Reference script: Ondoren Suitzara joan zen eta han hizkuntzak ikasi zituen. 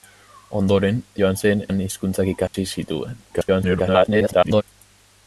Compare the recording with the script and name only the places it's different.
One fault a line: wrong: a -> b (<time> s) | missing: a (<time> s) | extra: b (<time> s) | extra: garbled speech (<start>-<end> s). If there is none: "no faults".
missing: Suitzara (1.0 s)
missing: eta (1.6 s)
extra: garbled speech (3.3-4.6 s)